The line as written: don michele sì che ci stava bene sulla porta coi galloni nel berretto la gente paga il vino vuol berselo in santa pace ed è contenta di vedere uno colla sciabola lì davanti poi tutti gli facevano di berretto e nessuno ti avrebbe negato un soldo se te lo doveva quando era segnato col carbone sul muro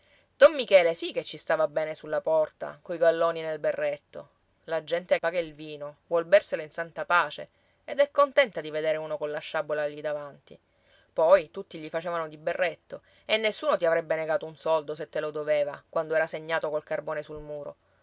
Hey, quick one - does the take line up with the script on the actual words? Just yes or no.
yes